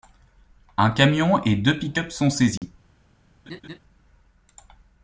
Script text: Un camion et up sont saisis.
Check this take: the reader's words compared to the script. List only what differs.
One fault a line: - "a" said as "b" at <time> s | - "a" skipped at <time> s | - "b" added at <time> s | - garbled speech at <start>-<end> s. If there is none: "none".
- "deux pick" added at 1.6 s